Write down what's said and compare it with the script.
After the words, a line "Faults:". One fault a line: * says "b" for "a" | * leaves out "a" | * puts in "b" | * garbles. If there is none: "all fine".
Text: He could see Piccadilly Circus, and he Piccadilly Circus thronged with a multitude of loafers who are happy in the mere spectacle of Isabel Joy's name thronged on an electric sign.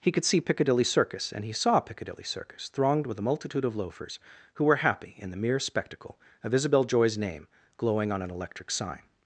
He could see Piccadilly Circus, and he saw Piccadilly Circus thronged with a multitude of loafers who were happy in the mere spectacle of Isabel Joy's name glowing on an electric sign.
Faults:
* puts in "saw"
* says "were" for "are"
* says "glowing" for "thronged"